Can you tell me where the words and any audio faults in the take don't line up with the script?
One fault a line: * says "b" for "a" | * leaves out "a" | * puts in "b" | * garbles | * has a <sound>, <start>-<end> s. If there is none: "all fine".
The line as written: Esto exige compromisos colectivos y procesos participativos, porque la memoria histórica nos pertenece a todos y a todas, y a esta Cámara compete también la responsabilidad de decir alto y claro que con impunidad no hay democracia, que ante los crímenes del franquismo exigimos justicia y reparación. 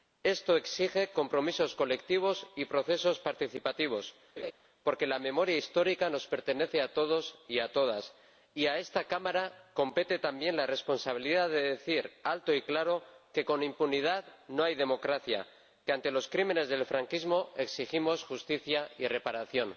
* has a laugh, 4.4-4.5 s